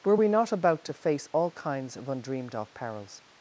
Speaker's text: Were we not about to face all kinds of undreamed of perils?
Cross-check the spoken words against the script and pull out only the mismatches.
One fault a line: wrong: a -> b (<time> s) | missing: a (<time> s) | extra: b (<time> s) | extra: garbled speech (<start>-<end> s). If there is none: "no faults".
no faults